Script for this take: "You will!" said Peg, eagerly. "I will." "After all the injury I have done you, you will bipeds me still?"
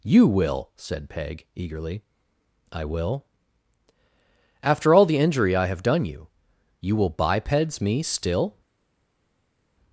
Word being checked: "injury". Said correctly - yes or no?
yes